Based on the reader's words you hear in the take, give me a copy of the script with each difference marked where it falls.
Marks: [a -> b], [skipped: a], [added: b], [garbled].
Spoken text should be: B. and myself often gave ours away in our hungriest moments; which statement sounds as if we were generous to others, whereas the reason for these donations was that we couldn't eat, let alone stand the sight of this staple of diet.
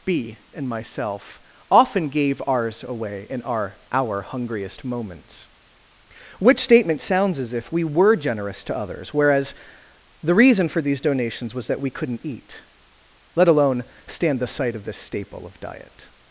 B. and myself often gave ours away in our [added: our] hungriest moments; which statement sounds as if we were generous to others, whereas the reason for these donations was that we couldn't eat, let alone stand the sight of this staple of diet.